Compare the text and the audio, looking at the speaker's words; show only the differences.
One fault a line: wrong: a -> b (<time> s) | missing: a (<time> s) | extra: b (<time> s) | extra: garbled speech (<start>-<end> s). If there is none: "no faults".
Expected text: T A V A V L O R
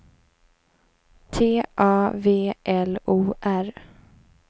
missing: A V (2.5 s)